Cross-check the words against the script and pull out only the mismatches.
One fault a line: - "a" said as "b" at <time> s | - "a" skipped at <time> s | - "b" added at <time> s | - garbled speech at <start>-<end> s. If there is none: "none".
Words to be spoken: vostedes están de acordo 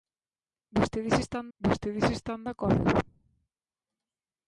- "vostedes están" added at 1.6 s